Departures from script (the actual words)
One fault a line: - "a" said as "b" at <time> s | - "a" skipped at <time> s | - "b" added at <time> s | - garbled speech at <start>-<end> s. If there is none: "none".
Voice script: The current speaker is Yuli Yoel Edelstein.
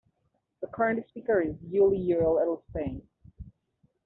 none